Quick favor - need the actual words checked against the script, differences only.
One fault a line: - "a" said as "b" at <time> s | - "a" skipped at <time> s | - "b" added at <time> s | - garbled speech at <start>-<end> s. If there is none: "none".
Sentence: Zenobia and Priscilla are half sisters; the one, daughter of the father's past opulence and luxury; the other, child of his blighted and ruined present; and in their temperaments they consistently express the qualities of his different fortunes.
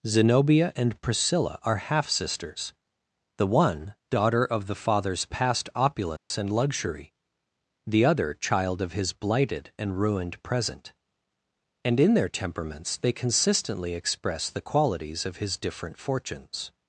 none